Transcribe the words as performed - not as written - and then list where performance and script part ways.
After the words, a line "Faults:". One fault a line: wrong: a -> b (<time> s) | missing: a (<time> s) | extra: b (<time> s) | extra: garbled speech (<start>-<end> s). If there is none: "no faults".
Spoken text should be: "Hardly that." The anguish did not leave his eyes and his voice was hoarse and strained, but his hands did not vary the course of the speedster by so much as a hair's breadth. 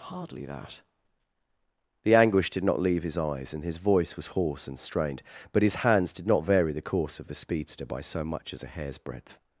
"Hardly that." The anguish did not leave his eyes and his voice was hoarse and strained, but his hands did not vary the course of the speedster by so much as a hair's breadth.
Faults:
no faults